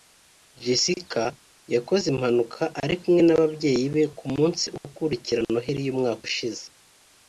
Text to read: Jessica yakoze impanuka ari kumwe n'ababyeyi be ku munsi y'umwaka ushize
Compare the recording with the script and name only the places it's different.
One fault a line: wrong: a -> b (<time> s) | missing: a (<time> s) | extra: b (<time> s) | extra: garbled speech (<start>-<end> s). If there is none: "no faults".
extra: ukurikira noheli (4.9 s)